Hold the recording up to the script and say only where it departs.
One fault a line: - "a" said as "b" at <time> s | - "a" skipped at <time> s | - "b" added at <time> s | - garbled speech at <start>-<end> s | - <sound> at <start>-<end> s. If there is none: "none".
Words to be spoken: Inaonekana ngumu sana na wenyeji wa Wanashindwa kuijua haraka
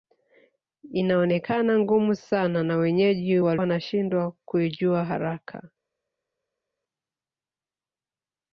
none